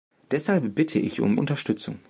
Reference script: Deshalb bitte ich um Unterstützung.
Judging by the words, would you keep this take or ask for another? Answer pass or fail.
pass